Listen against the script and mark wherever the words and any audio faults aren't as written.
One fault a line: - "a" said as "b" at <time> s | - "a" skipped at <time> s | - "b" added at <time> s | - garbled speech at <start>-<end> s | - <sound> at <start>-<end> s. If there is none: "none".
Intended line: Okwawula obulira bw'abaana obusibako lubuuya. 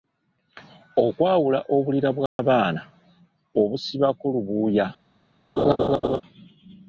- dropout at 2.3-2.4 s
- laugh at 5.6-6.2 s